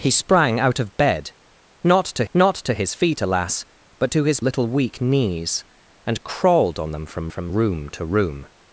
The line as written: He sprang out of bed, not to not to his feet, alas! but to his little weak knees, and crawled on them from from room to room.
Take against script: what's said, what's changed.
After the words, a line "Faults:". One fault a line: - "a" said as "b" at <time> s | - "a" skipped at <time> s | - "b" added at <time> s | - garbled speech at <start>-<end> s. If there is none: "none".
He sprang out of bed, not to not to his feet, alas! but to his little weak knees, and crawled on them from from room to room.
Faults:
none